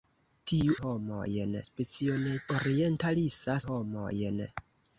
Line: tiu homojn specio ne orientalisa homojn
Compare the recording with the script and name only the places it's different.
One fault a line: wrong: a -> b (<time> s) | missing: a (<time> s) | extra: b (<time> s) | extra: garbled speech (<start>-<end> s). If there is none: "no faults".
no faults